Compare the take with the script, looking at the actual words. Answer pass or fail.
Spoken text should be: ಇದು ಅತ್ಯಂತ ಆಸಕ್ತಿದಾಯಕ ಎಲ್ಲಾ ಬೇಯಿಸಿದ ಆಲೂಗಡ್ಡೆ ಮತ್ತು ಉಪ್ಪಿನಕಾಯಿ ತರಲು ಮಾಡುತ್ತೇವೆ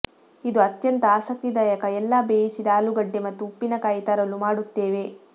pass